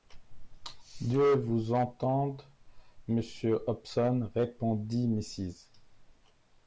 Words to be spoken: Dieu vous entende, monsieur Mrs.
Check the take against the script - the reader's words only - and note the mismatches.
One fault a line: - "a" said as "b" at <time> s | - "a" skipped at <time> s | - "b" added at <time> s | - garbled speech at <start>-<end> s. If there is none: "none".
- "Hobson répondit" added at 3.7 s